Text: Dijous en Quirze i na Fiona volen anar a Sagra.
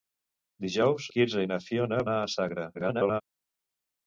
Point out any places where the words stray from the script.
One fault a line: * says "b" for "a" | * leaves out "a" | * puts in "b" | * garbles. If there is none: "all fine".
* leaves out "en"
* leaves out "volen"
* garbles